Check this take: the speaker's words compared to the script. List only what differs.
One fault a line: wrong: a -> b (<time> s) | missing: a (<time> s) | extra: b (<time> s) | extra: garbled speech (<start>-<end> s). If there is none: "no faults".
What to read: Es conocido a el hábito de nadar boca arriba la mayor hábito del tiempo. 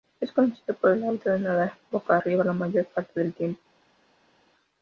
wrong: a -> por (0.8 s)
wrong: hábito -> parte (2.9 s)